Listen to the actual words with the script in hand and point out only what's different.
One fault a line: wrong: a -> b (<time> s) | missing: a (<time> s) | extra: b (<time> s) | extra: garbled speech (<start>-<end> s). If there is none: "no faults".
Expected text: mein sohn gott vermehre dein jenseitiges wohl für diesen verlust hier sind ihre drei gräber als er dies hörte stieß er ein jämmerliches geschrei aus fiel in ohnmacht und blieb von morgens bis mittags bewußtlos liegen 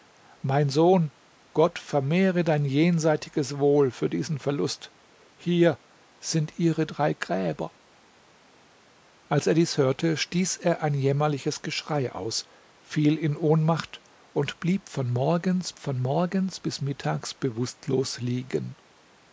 extra: von morgens (15.8 s)